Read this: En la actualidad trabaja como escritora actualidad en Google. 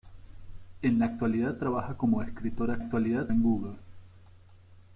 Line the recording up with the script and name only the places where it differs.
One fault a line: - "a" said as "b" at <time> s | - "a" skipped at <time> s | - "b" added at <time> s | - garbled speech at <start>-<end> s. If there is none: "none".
none